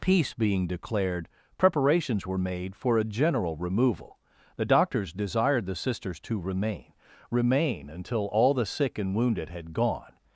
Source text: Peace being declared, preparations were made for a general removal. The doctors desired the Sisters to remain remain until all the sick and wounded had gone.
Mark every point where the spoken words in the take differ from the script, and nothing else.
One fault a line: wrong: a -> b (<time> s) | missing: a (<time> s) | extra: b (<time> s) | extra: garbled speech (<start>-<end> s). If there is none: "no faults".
no faults